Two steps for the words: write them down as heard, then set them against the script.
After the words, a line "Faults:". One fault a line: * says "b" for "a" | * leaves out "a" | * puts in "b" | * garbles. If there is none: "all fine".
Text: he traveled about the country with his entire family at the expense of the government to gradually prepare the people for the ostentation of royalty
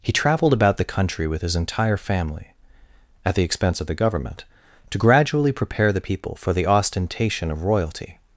he traveled about the country with his entire family at the expense of the government to gradually prepare the people for the ostentation of royalty
Faults:
all fine